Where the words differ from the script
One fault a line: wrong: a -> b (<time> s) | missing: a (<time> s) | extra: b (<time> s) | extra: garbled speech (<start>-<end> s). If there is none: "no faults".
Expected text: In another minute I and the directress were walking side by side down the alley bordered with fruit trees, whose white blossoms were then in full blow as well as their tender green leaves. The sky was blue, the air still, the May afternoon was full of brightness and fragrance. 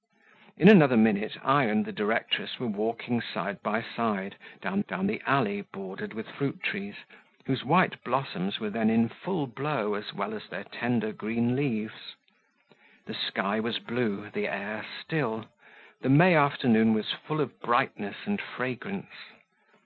extra: down (4.9 s)